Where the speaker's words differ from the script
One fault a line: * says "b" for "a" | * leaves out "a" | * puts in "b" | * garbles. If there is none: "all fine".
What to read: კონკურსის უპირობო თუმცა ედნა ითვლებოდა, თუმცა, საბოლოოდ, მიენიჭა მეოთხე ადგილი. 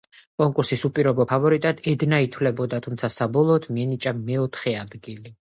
* says "ფავორიტად" for "თუმცა"